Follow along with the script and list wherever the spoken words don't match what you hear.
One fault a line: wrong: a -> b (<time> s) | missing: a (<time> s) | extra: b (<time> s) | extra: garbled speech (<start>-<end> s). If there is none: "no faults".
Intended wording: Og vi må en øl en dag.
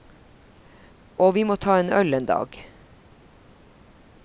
extra: ta (1.6 s)